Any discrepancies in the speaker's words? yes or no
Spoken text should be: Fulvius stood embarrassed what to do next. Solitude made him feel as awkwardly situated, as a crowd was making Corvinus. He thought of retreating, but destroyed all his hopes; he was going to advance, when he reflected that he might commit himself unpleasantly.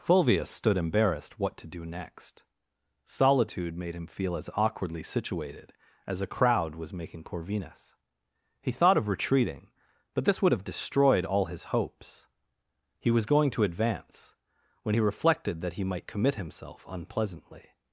yes